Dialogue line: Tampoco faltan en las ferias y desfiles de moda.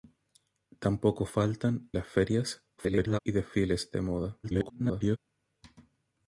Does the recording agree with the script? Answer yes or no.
no